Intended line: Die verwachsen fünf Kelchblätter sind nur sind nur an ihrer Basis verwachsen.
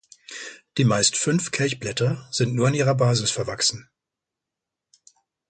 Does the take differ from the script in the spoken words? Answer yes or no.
yes